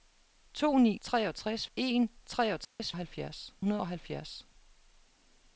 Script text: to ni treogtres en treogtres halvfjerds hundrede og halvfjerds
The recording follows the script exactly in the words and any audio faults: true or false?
false